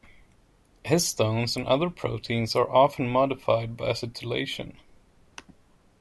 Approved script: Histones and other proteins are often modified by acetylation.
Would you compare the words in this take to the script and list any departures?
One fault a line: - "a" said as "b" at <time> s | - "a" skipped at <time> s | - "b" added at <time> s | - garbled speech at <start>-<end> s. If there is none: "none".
none